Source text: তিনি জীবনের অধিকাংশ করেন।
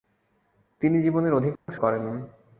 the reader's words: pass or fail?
pass